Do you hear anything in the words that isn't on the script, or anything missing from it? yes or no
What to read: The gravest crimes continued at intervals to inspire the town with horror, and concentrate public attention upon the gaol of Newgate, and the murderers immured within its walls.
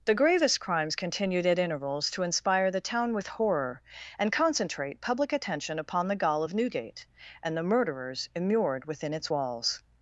no